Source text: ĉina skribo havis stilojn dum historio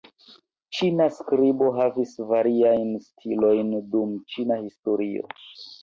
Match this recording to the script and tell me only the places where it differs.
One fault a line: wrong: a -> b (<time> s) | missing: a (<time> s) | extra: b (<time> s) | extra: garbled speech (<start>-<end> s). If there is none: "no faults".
extra: variajn (2.3 s)
extra: ĉina (4.4 s)